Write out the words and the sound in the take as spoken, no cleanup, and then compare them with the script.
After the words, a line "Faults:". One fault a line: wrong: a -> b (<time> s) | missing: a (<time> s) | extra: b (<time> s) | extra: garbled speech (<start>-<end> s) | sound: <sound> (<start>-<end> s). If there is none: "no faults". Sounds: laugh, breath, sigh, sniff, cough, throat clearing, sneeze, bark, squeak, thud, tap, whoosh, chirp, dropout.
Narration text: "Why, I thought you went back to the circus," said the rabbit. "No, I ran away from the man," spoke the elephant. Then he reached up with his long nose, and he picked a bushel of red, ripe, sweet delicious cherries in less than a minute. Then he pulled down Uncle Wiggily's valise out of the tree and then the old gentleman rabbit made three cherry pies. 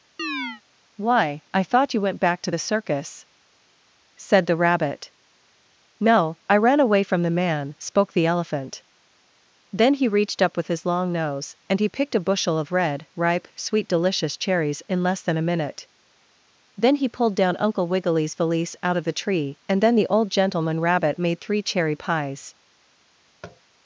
"Why, I thought you went back to the circus," said the rabbit. "No, I ran away from the man," spoke the elephant. Then he reached up with his long nose, and he picked a bushel of red, ripe, sweet delicious cherries in less than a minute. Then he pulled down Uncle Wiggily's valise out of the tree and then the old gentleman rabbit made three cherry pies.
Faults:
sound: chirp (0.2-0.6 s)
sound: tap (23.4-23.6 s)